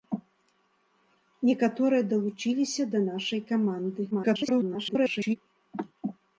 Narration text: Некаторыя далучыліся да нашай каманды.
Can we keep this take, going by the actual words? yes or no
no